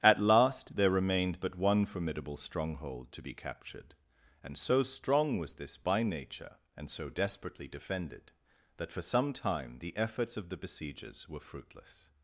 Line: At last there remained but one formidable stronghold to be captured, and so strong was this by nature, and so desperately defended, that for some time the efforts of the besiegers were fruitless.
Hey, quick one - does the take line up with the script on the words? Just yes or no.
yes